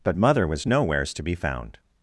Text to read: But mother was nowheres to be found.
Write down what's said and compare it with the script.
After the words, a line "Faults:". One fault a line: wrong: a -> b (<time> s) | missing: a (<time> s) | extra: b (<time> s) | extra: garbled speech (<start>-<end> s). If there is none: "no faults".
But mother was nowheres to be found.
Faults:
no faults